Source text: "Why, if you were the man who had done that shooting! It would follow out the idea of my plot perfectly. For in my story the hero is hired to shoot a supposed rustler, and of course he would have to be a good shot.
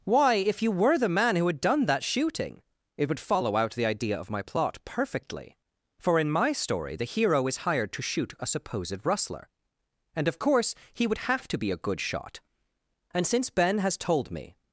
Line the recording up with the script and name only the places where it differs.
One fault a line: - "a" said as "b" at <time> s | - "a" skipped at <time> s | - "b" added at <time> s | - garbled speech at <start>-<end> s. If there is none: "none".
- "And since Ben has told me" added at 13.1 s